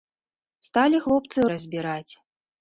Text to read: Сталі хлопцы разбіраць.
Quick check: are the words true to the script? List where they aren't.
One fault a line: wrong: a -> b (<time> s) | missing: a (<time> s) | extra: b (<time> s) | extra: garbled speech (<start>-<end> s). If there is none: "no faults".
no faults